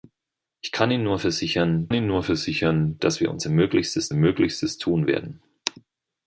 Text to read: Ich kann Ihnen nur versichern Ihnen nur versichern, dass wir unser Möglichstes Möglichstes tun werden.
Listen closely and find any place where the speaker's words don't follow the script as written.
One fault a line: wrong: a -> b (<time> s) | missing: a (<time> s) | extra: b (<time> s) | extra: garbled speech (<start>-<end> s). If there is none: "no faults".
no faults